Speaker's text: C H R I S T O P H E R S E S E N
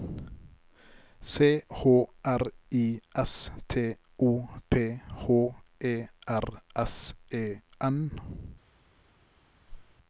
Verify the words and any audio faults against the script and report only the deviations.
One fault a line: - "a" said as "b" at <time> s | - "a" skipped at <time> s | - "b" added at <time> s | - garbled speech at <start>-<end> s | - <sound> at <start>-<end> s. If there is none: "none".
- "S E" skipped at 7.6 s
- whoosh at 9.7-10.0 s